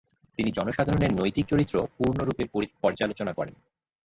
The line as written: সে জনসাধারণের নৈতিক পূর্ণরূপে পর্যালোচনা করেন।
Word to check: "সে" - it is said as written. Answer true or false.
false